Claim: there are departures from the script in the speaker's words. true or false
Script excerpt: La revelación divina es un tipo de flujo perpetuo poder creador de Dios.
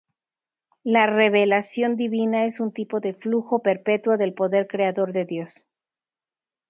true